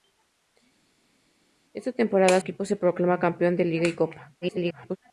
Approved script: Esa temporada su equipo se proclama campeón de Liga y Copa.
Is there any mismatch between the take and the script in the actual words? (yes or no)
yes